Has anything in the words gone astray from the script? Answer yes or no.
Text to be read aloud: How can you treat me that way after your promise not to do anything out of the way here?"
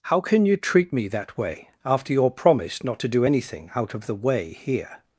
no